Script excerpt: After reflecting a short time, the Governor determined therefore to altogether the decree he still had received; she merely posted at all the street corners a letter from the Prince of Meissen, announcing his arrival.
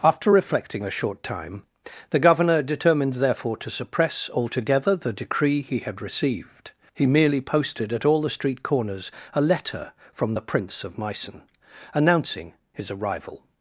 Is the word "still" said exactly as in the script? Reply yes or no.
no